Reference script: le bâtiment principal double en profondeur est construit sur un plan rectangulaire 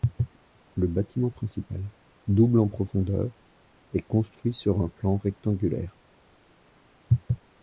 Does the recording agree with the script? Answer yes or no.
yes